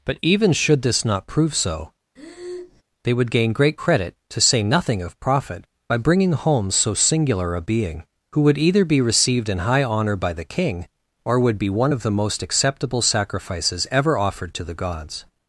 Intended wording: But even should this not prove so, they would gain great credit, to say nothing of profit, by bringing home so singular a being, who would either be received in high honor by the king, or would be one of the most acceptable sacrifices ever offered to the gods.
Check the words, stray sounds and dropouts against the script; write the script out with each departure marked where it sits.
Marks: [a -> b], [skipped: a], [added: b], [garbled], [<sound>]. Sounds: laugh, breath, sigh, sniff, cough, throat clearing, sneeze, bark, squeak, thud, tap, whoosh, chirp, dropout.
But even should this not prove so, [breath] they would gain great credit, to say nothing of profit, by bringing home so singular a being, who would either be received in high honor by the king, or would be one of the most acceptable sacrifices ever offered to the gods.